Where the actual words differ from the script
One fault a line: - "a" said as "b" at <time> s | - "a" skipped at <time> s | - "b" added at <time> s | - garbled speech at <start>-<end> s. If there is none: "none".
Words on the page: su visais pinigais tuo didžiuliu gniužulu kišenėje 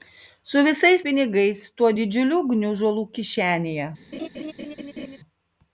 none